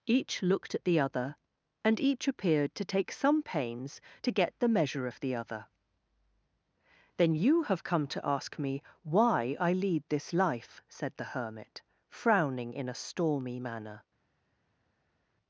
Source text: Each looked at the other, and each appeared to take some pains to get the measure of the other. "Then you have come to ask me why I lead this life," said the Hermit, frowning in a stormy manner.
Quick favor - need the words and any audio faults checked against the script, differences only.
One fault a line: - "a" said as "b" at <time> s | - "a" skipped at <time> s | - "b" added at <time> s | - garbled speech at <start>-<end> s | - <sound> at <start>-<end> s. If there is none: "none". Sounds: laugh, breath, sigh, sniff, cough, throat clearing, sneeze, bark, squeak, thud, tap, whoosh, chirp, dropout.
none